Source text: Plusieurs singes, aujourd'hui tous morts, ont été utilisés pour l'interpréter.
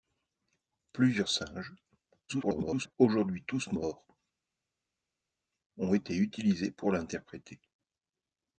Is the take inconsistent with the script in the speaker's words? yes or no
yes